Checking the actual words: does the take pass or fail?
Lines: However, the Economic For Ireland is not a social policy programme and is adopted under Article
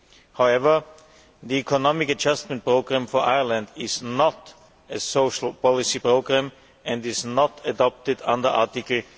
fail